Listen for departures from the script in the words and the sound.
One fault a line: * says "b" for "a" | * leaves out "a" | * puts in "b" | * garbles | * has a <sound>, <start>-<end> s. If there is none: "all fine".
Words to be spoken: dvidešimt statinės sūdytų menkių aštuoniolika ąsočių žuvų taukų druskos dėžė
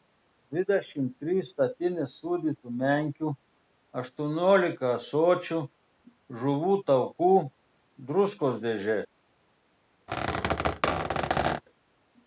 * puts in "trys"
* has a squeak, 10.1-11.6 s